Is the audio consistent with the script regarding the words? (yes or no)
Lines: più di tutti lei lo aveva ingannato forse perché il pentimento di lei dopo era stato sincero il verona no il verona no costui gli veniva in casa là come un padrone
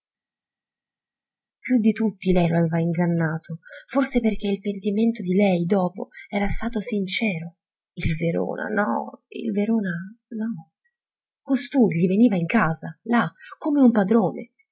yes